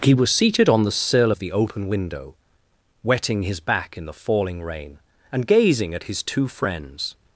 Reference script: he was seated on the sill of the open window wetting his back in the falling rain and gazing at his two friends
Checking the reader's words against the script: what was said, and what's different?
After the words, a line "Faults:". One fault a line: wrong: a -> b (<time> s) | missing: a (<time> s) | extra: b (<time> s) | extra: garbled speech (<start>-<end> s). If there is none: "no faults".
he was seated on the sill of the open window wetting his back in the falling rain and gazing at his two friends
Faults:
no faults